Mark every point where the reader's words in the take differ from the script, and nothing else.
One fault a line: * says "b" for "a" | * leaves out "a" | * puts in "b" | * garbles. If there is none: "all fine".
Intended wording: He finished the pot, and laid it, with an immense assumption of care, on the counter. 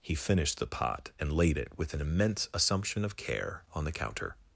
all fine